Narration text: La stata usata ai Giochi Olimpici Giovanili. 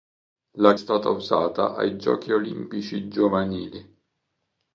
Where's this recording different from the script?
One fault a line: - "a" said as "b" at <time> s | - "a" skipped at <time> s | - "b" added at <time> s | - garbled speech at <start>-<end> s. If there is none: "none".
none